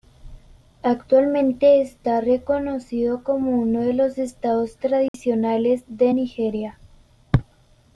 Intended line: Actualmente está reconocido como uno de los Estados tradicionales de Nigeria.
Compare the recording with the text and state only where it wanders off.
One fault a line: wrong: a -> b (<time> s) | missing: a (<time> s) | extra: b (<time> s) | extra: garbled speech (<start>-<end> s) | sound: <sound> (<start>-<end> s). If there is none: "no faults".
sound: dropout (5.1-5.1 s)